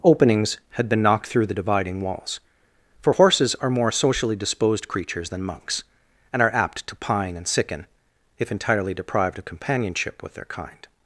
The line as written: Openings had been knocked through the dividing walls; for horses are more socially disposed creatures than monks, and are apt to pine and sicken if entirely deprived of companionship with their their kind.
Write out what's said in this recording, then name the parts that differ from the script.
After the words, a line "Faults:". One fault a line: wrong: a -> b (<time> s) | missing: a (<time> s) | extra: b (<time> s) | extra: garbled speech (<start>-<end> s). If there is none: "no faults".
Openings had been knocked through the dividing walls; for horses are more socially disposed creatures than monks, and are apt to pine and sicken if entirely deprived of companionship with their kind.
Faults:
missing: their (10.4 s)